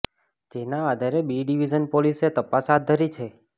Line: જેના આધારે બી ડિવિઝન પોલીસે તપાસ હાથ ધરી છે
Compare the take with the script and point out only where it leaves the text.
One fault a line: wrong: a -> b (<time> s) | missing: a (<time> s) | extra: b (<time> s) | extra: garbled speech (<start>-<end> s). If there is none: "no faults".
no faults